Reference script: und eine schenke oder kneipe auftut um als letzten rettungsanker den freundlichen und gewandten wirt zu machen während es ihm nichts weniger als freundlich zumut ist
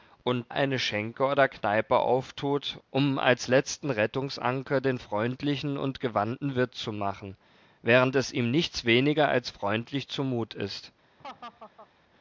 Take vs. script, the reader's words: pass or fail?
pass